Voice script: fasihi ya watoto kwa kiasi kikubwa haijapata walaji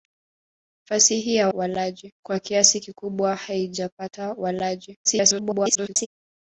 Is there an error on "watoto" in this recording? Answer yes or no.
yes